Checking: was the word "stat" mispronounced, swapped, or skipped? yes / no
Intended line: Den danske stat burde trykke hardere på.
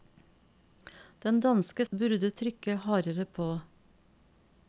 yes